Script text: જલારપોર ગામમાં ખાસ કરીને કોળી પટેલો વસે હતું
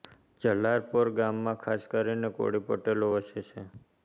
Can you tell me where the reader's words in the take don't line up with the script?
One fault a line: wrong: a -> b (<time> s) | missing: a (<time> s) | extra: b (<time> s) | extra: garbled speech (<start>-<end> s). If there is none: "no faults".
wrong: હતું -> છે (3.4 s)